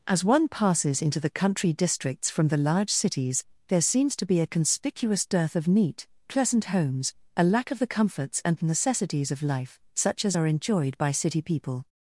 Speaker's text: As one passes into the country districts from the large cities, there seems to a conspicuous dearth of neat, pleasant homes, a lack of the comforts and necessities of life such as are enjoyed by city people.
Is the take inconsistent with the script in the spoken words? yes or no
yes